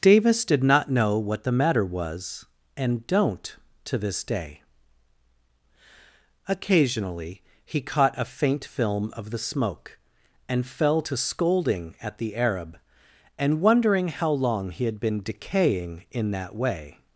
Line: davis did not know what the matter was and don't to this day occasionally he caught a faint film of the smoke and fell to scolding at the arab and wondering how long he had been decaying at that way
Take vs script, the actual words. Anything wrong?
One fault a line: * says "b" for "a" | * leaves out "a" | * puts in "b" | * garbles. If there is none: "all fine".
* says "in" for "at"